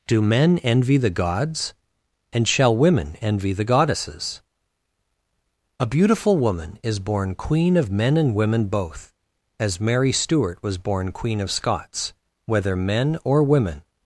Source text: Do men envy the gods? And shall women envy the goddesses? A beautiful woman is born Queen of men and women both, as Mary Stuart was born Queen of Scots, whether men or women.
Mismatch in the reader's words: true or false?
false